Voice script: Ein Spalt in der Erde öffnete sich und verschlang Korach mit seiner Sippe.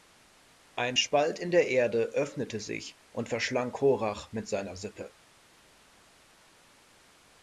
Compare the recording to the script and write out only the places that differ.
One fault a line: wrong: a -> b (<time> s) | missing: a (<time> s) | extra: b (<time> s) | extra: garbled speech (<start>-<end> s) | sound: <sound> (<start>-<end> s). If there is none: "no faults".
no faults